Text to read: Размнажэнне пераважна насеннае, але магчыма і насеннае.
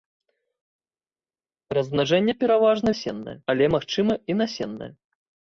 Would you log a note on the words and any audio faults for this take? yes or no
no